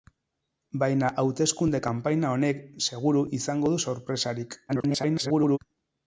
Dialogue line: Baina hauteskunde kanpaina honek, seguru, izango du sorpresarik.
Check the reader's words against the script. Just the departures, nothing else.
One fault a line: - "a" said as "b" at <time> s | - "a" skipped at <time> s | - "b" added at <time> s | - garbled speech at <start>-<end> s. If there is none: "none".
- garbled speech at 4.7-5.6 s